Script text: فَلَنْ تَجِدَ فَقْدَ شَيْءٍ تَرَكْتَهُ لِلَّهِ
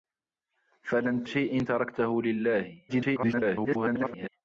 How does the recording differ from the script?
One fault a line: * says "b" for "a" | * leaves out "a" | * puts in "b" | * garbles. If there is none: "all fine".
* leaves out "تَجِدَ فَقْدَ"
* garbles